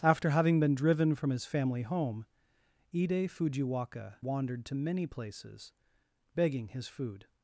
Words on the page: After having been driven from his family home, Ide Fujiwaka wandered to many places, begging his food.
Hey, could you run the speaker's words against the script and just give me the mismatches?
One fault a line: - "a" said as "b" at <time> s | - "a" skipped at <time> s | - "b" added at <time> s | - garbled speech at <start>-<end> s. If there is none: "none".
none